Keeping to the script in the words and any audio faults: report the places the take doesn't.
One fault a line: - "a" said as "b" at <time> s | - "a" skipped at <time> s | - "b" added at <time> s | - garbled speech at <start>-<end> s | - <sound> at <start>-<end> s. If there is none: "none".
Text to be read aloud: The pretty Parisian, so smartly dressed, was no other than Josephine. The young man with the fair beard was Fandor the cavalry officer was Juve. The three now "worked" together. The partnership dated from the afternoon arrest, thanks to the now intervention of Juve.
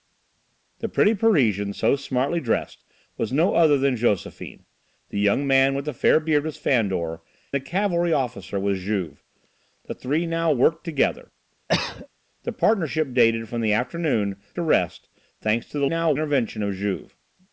- cough at 11.7-12.1 s